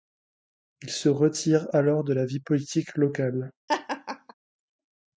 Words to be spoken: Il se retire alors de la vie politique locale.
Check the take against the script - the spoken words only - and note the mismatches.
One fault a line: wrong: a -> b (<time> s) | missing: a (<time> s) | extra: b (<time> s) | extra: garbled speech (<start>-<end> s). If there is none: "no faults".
no faults